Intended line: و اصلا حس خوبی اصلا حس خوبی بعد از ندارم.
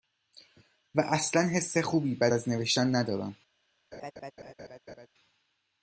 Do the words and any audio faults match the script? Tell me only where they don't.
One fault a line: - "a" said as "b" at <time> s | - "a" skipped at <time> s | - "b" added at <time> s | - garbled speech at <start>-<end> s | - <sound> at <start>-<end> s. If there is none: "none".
- "اصلا حس خوبی" skipped at 2.1 s
- "نوشتن" added at 2.5 s
- laugh at 3.9-5.1 s